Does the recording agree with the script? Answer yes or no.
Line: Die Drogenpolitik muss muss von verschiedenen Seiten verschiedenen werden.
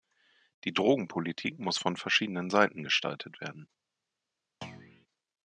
no